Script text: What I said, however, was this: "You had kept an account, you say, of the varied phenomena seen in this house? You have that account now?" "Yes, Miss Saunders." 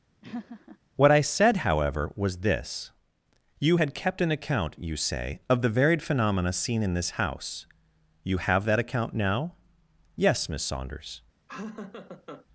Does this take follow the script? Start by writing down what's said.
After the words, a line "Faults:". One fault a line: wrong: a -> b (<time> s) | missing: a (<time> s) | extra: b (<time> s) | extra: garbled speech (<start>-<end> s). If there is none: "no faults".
What I said, however, was this: "You had kept an account, you say, of the varied phenomena seen in this house? You have that account now?" "Yes, Miss Saunders."
Faults:
no faults